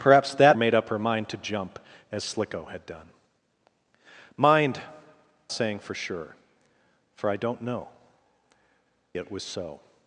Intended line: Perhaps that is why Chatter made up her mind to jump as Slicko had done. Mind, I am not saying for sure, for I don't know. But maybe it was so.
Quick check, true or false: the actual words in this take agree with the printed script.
false